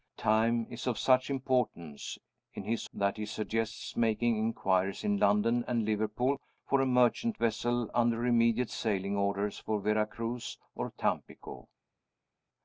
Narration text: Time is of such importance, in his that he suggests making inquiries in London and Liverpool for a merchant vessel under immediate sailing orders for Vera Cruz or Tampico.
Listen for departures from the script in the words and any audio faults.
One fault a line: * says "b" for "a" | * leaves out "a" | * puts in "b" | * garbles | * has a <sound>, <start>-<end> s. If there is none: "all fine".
all fine